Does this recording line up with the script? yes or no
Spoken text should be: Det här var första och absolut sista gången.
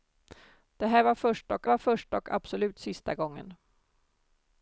no